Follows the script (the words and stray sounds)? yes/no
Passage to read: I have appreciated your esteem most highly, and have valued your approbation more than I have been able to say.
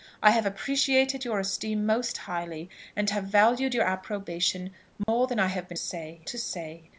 no